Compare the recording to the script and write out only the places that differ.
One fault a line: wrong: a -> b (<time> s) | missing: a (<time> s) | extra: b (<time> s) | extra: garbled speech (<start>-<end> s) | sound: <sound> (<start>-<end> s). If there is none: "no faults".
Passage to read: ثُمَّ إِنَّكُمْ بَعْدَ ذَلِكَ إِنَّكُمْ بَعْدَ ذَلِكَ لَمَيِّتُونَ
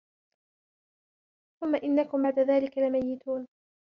missing: إِنَّكُمْ بَعْدَ ذَلِكَ (2.8 s)